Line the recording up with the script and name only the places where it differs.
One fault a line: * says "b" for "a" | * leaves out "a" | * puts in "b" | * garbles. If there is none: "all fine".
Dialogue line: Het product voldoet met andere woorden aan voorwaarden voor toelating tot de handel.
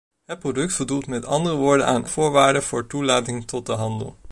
all fine